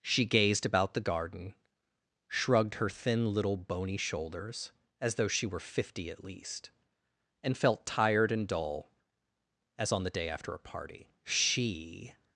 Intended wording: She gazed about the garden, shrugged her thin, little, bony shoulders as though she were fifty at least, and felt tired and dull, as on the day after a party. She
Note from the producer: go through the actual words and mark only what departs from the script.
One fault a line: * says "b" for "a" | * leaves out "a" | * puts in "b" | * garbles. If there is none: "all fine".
all fine